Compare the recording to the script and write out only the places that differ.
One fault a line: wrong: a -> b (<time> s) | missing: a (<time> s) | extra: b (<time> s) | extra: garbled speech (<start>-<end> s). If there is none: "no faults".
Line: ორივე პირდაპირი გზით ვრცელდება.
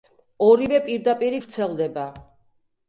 missing: გზით (1.4 s)